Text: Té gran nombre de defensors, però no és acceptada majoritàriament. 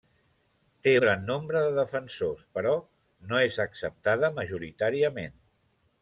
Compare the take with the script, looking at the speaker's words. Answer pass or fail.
pass